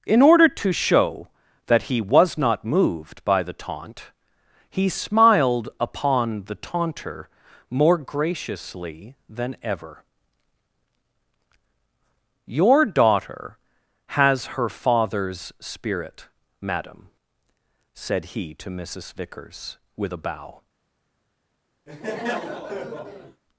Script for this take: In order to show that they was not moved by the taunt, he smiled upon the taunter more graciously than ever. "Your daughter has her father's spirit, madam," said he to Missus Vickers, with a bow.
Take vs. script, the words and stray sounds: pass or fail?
fail